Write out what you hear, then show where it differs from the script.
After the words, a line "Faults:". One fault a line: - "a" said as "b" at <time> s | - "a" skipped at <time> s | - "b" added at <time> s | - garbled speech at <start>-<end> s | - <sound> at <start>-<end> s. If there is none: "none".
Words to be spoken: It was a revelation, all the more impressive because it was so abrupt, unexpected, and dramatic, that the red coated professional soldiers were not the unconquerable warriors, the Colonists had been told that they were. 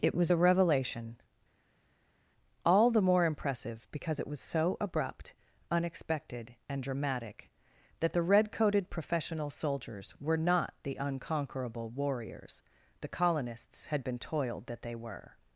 It was a revelation, all the more impressive because it was so abrupt, unexpected, and dramatic, that the red coated professional soldiers were not the unconquerable warriors, the Colonists had been toiled that they were.
Faults:
- "told" said as "toiled" at 14.2 s